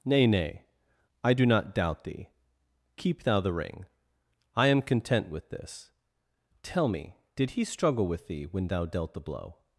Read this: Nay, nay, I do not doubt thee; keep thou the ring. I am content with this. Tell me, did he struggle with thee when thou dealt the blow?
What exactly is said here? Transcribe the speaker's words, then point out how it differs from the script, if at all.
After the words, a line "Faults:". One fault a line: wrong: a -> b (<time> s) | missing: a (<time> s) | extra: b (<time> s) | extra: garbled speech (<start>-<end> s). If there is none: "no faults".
Nay, nay, I do not doubt thee; keep thou the ring. I am content with this. Tell me, did he struggle with thee when thou dealt the blow?
Faults:
no faults